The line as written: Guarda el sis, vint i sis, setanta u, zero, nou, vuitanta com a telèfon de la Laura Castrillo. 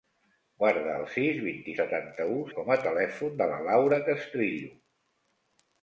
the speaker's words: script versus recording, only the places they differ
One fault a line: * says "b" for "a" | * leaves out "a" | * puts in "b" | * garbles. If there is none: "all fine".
* leaves out "sis"
* leaves out "zero nou vuitanta"